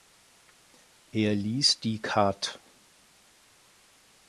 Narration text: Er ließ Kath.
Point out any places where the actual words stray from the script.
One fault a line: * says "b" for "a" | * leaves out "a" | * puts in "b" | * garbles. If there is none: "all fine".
* puts in "die"